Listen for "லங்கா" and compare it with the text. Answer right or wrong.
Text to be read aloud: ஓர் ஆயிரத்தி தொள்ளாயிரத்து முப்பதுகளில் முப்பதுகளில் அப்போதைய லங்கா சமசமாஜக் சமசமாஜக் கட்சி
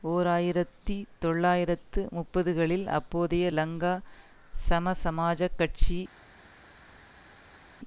right